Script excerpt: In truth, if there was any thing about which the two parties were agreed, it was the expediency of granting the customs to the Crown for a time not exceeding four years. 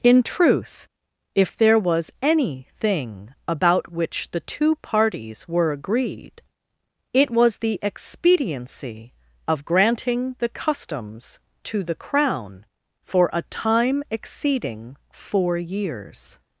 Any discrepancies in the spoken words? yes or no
yes